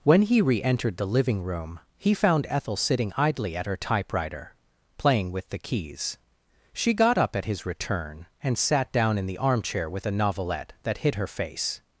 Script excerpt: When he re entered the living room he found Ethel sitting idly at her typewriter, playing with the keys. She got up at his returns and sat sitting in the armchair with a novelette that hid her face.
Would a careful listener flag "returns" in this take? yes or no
yes